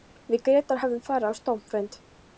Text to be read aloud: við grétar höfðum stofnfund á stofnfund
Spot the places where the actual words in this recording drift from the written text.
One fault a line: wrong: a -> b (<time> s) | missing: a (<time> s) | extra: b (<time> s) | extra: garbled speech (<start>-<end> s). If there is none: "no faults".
wrong: stofnfund -> farið (1.1 s)